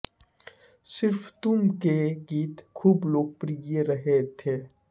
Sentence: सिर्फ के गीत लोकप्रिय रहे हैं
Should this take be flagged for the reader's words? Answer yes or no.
yes